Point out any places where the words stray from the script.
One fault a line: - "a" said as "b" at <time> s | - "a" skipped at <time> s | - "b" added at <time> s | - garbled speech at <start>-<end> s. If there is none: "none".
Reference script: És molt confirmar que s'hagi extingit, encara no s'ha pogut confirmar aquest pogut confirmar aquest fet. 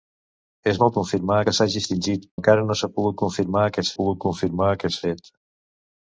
none